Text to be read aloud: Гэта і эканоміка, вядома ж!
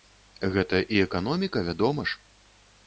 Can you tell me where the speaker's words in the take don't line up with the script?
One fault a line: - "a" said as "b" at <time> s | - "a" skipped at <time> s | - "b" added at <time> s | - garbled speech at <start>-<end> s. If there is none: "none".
none